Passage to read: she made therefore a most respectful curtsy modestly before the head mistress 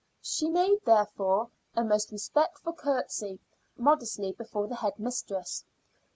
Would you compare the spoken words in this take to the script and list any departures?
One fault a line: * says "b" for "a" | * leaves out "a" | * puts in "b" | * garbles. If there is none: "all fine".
all fine